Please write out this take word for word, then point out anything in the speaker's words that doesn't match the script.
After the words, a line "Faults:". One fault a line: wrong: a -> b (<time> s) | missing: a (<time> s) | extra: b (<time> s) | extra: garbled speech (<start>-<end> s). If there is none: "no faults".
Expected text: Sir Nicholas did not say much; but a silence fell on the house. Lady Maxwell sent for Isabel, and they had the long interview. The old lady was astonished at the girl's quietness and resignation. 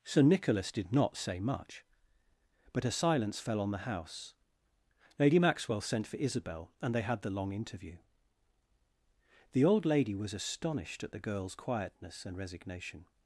Sir Nicholas did not say much; but a silence fell on the house. Lady Maxwell sent for Isabel, and they had the long interview. The old lady was astonished at the girl's quietness and resignation.
Faults:
no faults